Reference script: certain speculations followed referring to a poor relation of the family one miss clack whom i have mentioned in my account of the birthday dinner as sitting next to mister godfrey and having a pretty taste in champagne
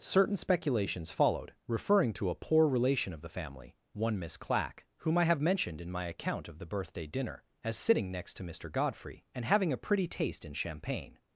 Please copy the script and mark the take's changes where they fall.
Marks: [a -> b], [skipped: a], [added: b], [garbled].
certain speculations followed referring to a poor relation of the family one miss clack whom i have mentioned in my account of the birthday dinner as sitting next to mister godfrey and having a pretty taste in champagne